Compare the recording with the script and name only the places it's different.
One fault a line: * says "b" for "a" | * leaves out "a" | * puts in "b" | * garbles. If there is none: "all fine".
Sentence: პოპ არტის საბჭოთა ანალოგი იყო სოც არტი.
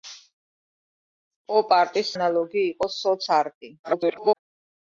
* leaves out "საბჭოთა"
* garbles